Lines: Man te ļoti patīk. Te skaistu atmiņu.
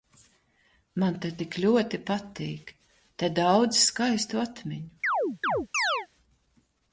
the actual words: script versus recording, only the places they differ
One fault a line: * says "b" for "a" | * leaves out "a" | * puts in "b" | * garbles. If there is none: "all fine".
* puts in "tik"
* puts in "daudz"